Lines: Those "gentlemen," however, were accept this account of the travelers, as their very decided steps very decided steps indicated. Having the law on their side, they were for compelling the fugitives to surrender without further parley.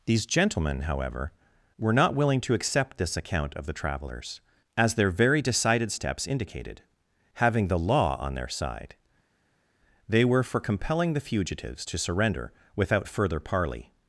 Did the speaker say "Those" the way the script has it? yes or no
no